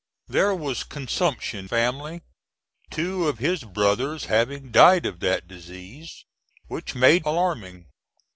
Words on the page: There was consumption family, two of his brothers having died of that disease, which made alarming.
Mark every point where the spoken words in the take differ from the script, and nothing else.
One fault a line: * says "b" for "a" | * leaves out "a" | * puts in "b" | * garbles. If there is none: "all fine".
all fine